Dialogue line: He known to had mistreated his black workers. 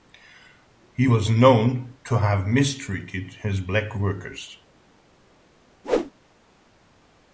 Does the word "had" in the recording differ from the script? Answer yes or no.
yes